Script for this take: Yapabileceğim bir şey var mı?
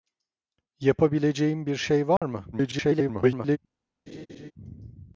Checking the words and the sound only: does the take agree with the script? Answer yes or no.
no